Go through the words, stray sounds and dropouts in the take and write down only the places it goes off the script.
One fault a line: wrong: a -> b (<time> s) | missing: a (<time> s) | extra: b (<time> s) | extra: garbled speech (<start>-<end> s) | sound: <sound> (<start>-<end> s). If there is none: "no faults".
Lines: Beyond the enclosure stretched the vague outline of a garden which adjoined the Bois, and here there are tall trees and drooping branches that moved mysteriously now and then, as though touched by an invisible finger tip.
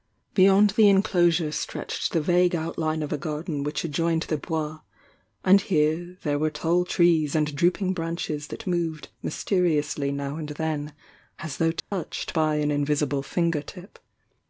wrong: are -> were (6.4 s)
sound: dropout (11.8-11.9 s)